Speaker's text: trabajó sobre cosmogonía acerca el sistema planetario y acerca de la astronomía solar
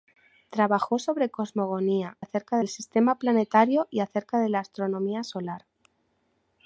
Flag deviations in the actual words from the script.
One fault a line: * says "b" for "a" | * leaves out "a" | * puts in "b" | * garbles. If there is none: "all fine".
all fine